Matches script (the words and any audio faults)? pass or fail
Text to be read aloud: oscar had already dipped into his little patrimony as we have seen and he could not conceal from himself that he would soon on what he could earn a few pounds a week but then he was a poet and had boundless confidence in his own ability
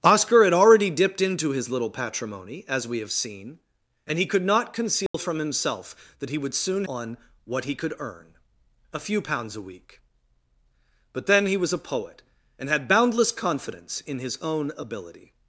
fail